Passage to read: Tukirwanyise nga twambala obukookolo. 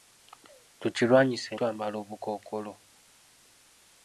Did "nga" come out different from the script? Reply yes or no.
yes